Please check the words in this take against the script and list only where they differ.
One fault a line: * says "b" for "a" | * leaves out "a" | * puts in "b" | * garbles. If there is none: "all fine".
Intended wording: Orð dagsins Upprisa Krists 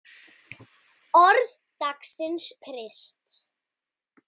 * leaves out "Upprisa"